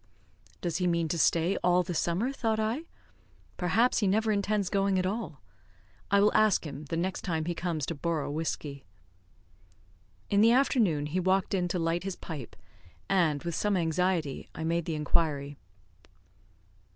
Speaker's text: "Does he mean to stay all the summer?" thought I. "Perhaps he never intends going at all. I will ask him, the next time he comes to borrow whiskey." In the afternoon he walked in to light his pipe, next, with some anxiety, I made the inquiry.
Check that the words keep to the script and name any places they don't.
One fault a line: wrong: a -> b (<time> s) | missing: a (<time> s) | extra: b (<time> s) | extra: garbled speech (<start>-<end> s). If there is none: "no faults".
wrong: next -> and (13.1 s)